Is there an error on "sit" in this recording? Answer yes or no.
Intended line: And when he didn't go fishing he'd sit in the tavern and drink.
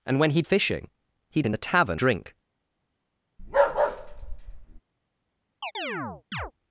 yes